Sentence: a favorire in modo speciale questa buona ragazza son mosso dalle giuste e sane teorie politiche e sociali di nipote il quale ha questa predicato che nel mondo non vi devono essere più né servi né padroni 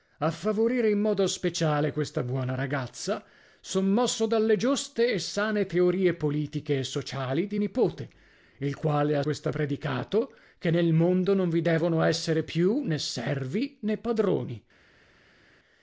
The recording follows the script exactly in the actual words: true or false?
true